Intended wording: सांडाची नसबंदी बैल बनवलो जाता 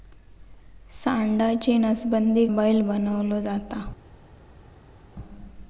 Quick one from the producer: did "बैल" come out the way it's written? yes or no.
yes